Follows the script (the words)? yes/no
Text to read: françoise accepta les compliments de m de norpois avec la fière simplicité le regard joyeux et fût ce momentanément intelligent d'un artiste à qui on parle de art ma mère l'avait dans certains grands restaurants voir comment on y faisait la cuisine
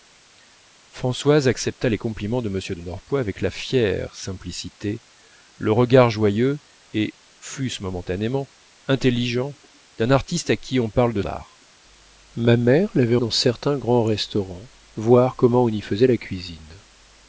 yes